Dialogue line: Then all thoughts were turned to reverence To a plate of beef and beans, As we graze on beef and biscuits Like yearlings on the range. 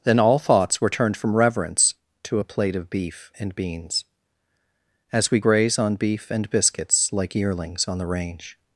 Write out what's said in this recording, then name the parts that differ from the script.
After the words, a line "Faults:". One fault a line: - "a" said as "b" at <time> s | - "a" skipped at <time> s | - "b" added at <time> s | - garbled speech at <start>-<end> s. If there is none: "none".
Then all thoughts were turned from reverence To a plate of beef and beans, As we graze on beef and biscuits Like yearlings on the range.
Faults:
- "to" said as "from" at 1.2 s